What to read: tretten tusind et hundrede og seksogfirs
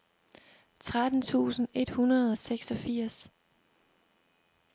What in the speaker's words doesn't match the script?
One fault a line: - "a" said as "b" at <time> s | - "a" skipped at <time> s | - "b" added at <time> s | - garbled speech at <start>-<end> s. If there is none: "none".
none